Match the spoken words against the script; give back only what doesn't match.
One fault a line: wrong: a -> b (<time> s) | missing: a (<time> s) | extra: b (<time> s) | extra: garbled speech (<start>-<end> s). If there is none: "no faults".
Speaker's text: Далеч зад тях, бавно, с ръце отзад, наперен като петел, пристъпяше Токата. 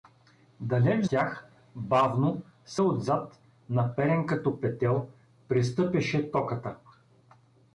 missing: зад (1.1 s)
missing: ръце (2.8 s)